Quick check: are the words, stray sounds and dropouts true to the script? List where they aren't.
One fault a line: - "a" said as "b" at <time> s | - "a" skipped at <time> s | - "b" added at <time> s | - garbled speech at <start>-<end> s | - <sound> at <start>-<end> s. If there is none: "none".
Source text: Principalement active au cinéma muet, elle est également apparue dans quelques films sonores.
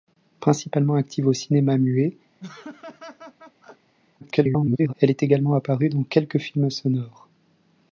- laugh at 2.4-3.9 s
- garbled speech at 4.2-4.9 s